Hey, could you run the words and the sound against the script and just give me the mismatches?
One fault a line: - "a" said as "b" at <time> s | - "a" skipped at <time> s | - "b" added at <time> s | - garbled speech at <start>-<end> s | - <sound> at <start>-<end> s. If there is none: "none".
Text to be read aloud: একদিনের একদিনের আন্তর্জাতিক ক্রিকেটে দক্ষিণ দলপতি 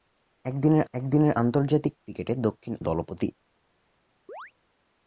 - chirp at 4.3-4.5 s